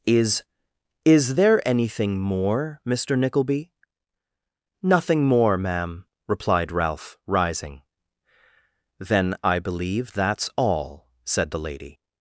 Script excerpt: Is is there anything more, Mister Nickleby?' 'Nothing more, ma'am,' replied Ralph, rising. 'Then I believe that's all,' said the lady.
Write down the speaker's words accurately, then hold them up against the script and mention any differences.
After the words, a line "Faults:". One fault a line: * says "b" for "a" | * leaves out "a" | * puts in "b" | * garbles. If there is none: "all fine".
Is is there anything more, Mister Nickleby?' 'Nothing more, ma'am,' replied Ralph, rising. 'Then I believe that's all,' said the lady.
Faults:
all fine